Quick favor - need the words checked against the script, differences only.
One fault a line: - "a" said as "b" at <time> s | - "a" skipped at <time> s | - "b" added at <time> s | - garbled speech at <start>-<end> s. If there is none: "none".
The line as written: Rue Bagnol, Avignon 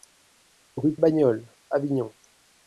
none